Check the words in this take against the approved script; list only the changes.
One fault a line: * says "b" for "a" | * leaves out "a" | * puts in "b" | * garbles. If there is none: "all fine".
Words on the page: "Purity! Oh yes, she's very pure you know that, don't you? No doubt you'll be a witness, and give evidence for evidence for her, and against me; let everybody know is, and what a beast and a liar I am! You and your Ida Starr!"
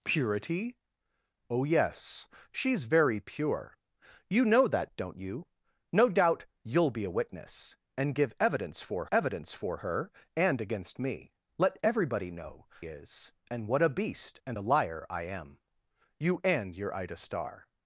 all fine